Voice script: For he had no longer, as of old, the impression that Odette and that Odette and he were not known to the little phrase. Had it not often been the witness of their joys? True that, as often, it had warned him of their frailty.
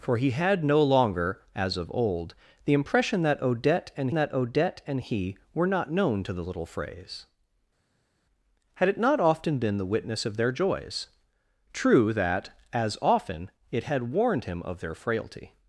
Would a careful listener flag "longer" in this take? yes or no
no